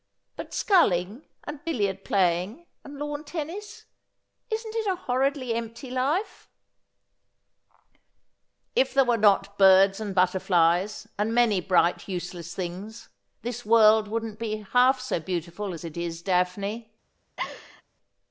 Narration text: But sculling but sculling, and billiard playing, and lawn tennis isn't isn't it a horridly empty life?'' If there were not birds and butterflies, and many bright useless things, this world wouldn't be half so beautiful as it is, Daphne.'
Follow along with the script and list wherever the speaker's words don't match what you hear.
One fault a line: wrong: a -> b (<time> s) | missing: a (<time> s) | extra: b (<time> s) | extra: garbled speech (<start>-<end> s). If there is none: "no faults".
missing: but sculling (1.2 s)
missing: isn't (4.7 s)